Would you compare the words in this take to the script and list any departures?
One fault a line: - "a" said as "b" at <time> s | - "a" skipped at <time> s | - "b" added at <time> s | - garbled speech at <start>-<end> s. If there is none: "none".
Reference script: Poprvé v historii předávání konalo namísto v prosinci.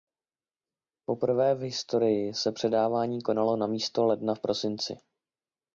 - "se" added at 2.3 s
- "ledna" added at 4.0 s